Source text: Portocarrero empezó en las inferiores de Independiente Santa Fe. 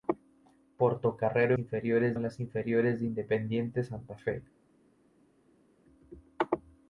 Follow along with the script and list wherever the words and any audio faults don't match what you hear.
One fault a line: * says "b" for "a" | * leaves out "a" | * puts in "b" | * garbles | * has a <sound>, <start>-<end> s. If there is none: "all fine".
* says "inferiores" for "empezó"